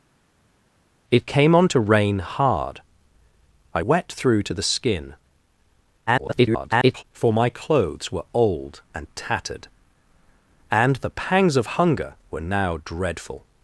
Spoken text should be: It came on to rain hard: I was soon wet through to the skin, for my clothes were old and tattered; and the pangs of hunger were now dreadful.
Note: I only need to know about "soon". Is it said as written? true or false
false